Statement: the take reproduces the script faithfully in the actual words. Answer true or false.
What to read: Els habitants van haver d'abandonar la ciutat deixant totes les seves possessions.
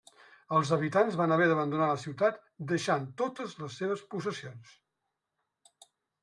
true